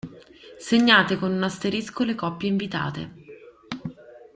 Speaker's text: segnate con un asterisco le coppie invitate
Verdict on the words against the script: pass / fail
pass